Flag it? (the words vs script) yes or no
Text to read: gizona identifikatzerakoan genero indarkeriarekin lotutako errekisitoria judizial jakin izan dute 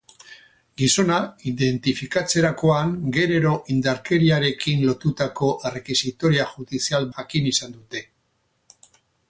no